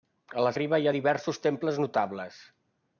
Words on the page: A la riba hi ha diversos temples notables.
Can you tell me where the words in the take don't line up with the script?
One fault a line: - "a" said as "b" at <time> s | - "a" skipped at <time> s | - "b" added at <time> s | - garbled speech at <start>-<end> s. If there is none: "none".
none